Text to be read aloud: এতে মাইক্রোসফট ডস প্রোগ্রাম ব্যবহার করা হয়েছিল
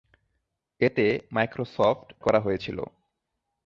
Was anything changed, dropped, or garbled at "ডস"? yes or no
yes